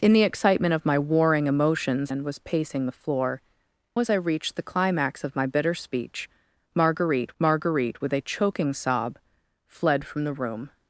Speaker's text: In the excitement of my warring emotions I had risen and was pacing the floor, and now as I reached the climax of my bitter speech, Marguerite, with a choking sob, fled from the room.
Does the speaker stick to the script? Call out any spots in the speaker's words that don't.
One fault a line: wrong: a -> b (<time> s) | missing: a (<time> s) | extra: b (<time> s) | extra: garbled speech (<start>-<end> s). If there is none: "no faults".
missing: I had risen (2.1 s)
missing: and now (3.4 s)
extra: Marguerite (7.4 s)